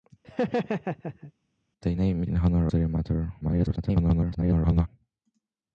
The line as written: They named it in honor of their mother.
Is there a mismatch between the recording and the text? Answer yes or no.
yes